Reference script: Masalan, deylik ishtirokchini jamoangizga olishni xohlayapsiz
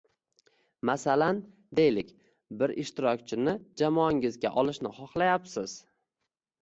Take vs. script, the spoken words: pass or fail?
fail